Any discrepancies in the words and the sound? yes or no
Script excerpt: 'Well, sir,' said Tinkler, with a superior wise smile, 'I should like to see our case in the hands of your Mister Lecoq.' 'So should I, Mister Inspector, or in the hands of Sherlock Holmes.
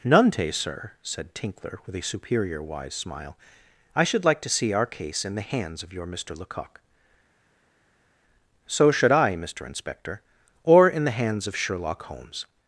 yes